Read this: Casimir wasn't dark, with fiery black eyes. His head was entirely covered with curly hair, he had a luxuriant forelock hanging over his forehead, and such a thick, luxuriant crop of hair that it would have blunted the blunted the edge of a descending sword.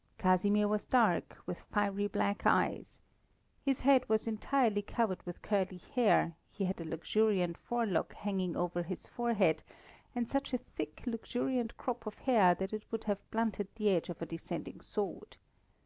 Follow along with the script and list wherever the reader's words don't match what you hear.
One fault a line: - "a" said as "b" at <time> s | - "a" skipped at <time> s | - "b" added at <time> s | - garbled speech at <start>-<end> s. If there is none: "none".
- "wasn't" said as "was" at 0.7 s
- "blunted the" skipped at 13.9 s